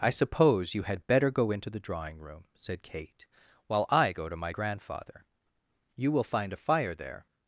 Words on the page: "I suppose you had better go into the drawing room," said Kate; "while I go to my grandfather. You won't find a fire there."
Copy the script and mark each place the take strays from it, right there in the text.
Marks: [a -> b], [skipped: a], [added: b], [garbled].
"I suppose you had better go into the drawing room," said Kate; "while I go to my grandfather. You [won't -> will] find a fire there."